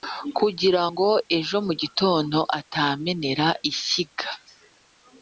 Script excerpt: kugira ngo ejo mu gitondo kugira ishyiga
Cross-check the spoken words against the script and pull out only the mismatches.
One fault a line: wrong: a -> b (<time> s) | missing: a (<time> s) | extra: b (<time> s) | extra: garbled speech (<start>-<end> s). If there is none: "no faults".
wrong: kugira -> atamenera (2.6 s)